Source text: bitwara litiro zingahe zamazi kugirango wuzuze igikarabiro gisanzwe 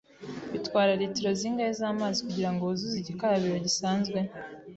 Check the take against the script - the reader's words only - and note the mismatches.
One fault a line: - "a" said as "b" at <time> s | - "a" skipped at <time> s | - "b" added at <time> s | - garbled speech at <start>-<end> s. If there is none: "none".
none